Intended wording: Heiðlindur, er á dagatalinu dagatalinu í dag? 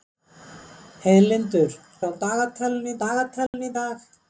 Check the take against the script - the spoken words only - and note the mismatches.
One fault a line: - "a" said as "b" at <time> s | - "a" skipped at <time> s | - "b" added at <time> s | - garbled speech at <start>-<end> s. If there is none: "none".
none